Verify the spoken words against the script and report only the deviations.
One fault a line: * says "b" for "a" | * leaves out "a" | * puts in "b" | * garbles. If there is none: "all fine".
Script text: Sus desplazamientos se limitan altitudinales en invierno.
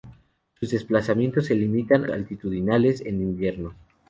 all fine